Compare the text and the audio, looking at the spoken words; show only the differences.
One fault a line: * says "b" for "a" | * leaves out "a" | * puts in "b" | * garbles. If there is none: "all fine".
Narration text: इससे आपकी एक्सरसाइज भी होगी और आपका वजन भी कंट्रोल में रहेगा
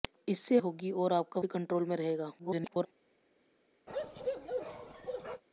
* leaves out "आपकी एक्सरसाइज भी"
* leaves out "वजन"
* garbles